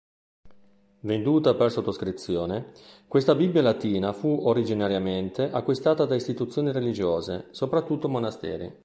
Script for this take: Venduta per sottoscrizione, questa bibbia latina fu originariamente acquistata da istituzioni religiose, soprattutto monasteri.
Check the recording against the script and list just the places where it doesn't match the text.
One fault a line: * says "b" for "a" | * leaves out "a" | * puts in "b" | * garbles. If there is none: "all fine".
all fine